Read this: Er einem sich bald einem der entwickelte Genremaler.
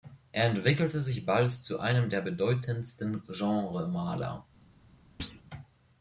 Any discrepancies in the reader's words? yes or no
yes